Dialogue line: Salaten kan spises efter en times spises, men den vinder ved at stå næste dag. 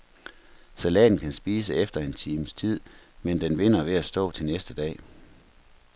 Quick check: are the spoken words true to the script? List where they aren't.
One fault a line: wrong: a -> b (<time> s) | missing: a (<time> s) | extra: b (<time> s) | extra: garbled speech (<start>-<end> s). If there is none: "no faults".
wrong: spises -> tid (2.5 s)
extra: til (4.3 s)